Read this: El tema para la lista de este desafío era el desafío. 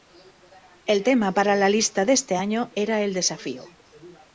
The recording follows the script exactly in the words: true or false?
false